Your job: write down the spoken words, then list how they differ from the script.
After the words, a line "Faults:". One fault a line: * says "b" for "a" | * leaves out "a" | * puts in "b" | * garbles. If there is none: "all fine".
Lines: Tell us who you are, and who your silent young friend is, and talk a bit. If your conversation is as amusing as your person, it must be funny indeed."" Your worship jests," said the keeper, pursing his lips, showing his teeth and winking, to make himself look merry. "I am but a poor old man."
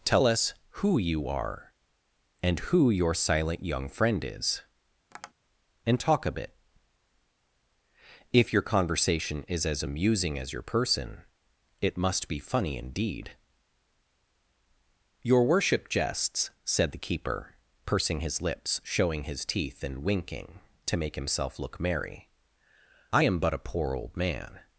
Tell us who you are, and who your silent young friend is, and talk a bit. If your conversation is as amusing as your person, it must be funny indeed."" Your worship jests," said the keeper, pursing his lips, showing his teeth and winking, to make himself look merry. "I am but a poor old man."
Faults:
all fine